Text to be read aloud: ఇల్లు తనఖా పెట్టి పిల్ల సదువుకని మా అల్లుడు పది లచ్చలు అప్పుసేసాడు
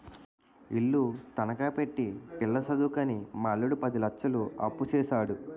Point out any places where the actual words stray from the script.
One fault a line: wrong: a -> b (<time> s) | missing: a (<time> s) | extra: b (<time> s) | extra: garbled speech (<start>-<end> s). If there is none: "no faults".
no faults